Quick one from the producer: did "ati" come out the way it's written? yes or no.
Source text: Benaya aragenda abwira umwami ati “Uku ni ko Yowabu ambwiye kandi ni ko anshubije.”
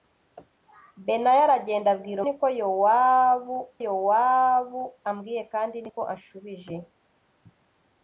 no